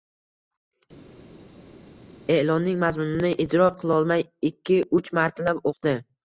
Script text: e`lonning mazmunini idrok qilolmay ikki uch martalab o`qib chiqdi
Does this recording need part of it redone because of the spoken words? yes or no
yes